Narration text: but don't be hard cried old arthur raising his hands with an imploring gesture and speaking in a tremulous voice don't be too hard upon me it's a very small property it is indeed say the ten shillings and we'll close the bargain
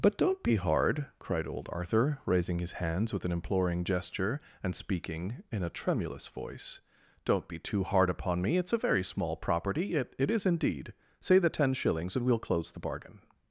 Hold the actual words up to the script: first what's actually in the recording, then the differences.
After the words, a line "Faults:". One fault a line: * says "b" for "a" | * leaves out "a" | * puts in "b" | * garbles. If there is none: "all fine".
but don't be hard cried old arthur raising his hands with an imploring gesture and speaking in a tremulous voice don't be too hard upon me it's a very small property it it is indeed say the ten shillings and we'll close the bargain
Faults:
* puts in "it"